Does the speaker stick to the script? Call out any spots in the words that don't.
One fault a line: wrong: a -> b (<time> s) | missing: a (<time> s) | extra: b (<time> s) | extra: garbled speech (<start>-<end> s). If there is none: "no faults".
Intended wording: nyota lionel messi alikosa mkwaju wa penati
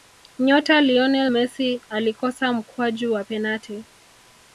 no faults